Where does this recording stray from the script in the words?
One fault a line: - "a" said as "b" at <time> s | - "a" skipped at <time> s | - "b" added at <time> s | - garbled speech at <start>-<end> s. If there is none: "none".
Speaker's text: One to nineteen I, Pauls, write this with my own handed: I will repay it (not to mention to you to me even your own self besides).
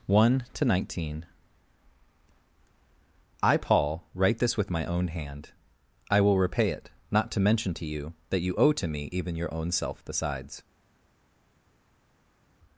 - "Pauls" said as "Paul" at 3.6 s
- "handed" said as "hand" at 5.1 s
- "that you owe" added at 8.3 s